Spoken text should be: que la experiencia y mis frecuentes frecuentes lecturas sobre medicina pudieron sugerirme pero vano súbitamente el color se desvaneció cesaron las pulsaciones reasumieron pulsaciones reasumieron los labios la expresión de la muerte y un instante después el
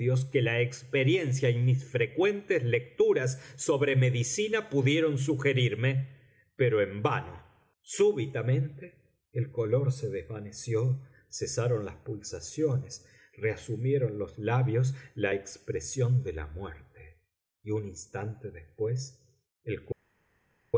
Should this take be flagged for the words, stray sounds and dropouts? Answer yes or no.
yes